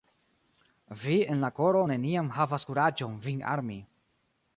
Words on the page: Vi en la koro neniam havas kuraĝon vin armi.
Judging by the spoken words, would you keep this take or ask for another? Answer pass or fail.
pass